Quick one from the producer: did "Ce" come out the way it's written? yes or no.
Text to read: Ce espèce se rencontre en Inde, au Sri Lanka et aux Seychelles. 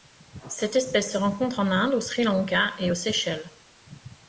no